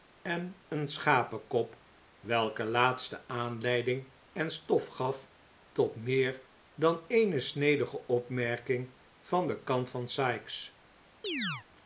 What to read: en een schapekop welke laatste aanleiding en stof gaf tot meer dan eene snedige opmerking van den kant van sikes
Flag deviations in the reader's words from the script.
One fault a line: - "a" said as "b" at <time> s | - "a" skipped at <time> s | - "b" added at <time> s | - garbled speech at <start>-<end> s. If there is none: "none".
none